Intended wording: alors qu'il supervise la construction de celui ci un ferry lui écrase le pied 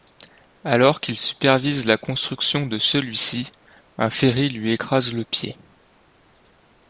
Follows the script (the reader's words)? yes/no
yes